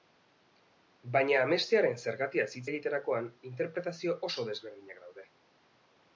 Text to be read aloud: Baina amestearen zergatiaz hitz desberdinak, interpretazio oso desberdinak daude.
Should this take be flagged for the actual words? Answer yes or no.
yes